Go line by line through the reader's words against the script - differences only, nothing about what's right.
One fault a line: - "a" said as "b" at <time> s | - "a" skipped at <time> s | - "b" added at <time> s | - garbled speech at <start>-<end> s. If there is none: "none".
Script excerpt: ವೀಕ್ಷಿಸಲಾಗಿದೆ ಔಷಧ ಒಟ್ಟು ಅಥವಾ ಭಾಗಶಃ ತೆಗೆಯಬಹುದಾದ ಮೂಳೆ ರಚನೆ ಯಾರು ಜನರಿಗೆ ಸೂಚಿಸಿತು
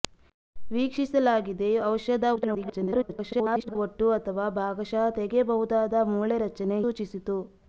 - garbled speech at 2.4-3.8 s
- "ಯಾರು ಜನರಿಗೆ" skipped at 6.8 s